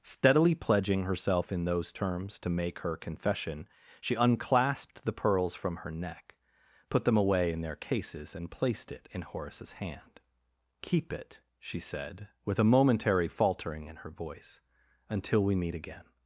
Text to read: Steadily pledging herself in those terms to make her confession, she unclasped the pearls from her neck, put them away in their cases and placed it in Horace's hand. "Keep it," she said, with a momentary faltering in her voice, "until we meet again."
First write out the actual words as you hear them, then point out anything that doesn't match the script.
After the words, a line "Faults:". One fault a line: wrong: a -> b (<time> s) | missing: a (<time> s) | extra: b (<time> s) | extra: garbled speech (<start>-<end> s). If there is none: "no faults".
Steadily pledging herself in those terms to make her confession, she unclasped the pearls from her neck, put them away in their cases and placed it in Horace's hand. "Keep it," she said, with a momentary faltering in her voice, "until we meet again."
Faults:
no faults